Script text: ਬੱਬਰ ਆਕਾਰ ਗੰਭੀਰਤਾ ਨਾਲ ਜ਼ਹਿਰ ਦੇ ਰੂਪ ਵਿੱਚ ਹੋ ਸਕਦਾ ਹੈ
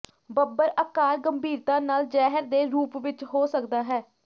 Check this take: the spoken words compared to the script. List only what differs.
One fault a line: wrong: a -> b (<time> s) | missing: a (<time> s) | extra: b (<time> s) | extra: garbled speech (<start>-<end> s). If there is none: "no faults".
no faults